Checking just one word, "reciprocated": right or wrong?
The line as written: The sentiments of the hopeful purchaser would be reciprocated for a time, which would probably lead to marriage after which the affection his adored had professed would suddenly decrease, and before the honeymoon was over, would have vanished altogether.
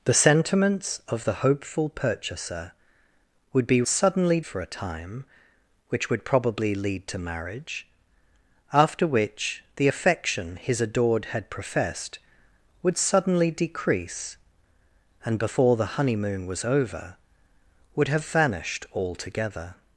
wrong